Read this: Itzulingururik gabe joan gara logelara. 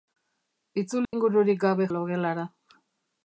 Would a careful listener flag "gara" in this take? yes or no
yes